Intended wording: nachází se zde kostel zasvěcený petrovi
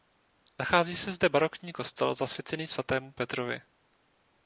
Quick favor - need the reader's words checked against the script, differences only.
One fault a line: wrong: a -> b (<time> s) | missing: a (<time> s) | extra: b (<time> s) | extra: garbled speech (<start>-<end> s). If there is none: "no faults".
extra: barokní (1.3 s)
extra: svatému (2.7 s)